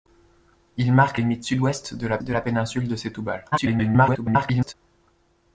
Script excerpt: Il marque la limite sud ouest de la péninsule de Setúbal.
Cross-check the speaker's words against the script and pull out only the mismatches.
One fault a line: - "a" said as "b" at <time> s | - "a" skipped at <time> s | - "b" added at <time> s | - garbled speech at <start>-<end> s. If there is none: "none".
- "la" skipped at 1.2 s
- "de la" added at 2.2 s
- garbled speech at 3.5-4.7 s